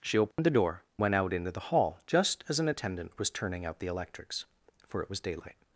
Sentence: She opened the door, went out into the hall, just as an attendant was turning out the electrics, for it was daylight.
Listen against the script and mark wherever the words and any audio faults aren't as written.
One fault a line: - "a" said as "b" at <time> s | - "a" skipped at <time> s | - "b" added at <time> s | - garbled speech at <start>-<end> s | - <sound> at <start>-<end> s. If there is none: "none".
- dropout at 0.3-0.4 s